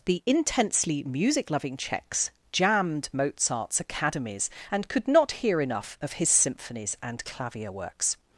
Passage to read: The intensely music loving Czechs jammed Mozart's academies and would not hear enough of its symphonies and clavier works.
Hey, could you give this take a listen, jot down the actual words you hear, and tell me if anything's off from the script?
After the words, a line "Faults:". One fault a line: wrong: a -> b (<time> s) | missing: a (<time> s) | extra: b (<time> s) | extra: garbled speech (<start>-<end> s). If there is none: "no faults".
The intensely music loving Czechs jammed Mozart's academies and could not hear enough of his symphonies and clavier works.
Faults:
wrong: would -> could (4.9 s)
wrong: its -> his (6.1 s)